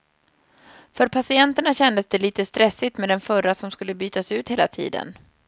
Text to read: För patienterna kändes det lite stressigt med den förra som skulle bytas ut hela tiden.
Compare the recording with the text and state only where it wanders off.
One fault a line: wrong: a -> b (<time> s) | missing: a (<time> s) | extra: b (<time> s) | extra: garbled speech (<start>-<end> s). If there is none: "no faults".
no faults